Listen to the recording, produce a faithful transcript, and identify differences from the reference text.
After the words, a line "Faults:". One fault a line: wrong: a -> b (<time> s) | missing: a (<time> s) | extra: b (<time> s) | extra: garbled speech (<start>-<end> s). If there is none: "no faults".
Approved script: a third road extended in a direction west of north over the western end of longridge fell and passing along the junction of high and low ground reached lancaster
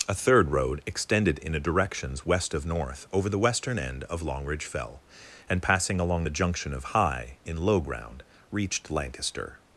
a third road extended in a directions west of north over the western end of longridge fell and passing along the junction of high in low ground reached lancaster
Faults:
wrong: direction -> directions (1.6 s)
wrong: and -> in (7.4 s)